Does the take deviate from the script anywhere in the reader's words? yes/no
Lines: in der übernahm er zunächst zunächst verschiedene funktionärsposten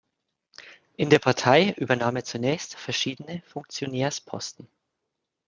yes